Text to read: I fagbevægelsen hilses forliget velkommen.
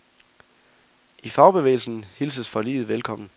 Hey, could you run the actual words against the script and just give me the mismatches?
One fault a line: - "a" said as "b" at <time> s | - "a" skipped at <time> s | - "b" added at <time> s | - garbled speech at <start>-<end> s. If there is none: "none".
none